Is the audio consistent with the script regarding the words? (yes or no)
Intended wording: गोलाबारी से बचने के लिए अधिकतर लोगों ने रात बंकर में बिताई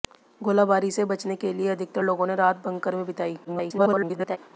no